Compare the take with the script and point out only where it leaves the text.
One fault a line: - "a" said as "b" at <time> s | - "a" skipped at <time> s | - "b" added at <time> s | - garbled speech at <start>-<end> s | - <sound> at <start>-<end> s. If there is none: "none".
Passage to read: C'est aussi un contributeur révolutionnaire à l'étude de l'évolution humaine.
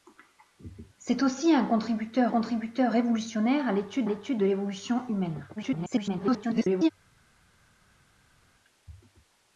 - "contributeur" added at 2.3 s
- "l'étude" added at 4.0 s
- garbled speech at 5.6-6.9 s